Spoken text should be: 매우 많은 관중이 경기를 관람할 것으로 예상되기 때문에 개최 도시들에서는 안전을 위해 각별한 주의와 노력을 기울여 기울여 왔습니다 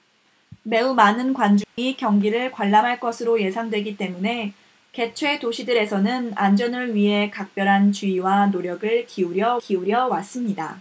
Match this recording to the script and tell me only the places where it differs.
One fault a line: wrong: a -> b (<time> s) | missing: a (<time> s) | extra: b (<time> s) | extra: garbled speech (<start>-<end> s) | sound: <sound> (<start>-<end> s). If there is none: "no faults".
sound: dropout (1.6-1.8 s)